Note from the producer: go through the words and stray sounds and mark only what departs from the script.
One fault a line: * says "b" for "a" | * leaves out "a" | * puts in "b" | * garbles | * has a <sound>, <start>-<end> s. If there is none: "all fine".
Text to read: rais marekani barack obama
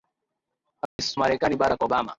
* has a dropout, 0.9-1.0 s